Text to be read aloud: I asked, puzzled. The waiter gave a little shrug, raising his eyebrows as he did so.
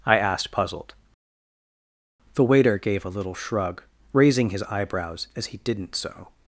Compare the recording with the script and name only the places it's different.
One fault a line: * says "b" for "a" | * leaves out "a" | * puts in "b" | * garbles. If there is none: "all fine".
* says "didn't" for "did"